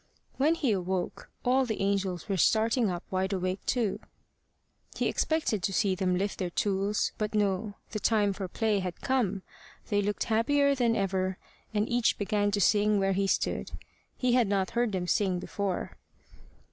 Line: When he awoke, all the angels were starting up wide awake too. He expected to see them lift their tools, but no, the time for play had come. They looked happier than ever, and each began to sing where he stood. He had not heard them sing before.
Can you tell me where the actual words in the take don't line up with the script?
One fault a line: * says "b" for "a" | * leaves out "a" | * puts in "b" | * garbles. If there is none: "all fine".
all fine